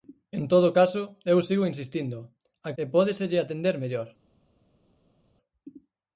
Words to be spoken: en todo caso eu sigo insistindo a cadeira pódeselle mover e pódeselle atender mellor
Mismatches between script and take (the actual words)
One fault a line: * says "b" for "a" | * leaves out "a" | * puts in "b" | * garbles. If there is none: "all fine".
* leaves out "cadeira pódeselle mover"